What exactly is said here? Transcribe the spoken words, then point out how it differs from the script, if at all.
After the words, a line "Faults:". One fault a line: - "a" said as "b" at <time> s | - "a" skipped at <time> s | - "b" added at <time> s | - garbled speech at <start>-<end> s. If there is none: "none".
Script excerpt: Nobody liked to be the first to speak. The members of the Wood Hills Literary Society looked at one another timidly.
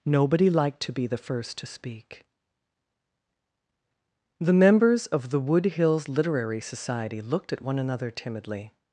Nobody liked to be the first to speak. The members of the Wood Hills Literary Society looked at one another timidly.
Faults:
none